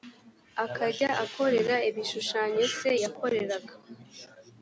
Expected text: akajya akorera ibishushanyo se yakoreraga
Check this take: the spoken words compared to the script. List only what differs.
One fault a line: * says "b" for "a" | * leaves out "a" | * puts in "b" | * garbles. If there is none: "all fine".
all fine